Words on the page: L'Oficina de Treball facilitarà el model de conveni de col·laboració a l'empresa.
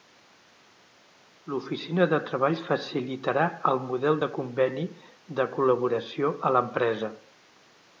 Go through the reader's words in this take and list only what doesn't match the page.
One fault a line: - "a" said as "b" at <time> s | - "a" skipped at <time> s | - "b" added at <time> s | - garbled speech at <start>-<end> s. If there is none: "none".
none